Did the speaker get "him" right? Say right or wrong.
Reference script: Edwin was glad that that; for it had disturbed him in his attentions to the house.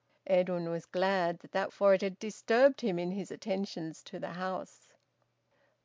right